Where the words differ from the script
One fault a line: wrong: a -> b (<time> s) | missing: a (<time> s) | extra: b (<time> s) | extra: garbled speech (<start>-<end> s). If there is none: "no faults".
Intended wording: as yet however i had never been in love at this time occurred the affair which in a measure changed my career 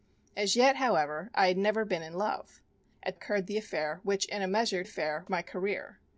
missing: this time (3.2 s)
wrong: changed -> affair (4.8 s)